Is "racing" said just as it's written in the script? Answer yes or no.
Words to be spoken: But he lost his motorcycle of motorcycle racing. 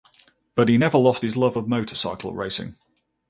yes